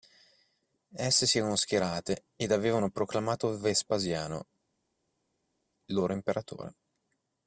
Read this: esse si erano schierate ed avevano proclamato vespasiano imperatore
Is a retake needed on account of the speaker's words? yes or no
yes